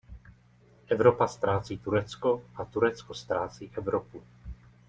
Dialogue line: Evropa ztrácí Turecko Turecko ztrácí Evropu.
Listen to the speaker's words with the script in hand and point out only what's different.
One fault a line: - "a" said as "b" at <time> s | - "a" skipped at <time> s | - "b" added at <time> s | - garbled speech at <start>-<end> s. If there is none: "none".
- "a" added at 2.5 s